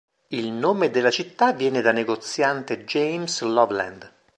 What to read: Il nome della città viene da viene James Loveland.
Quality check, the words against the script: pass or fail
fail